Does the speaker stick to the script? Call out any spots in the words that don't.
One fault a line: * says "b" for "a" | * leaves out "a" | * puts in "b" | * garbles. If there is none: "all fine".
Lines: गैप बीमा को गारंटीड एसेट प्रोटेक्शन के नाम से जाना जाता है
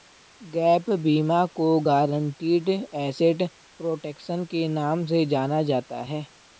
all fine